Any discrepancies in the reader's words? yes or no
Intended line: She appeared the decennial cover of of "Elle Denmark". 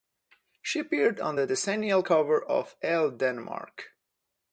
yes